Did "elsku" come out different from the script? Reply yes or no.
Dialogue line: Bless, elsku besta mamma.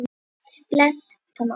yes